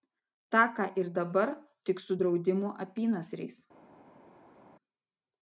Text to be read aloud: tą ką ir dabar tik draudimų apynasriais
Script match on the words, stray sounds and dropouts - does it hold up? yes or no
no